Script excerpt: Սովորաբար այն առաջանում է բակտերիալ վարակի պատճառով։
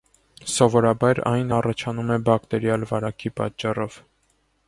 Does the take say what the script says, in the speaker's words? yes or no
yes